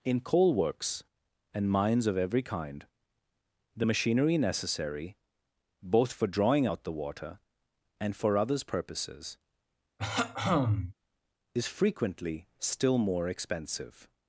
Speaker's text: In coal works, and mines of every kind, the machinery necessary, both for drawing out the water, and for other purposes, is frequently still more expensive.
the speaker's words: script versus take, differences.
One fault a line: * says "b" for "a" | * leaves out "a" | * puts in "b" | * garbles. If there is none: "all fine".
* says "others" for "other"